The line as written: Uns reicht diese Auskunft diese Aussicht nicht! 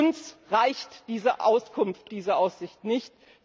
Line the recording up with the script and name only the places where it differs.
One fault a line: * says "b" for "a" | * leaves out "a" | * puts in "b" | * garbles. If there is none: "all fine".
all fine